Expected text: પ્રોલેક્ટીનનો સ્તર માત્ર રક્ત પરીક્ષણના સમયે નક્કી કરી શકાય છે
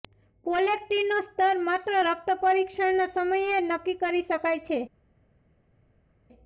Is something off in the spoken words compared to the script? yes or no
no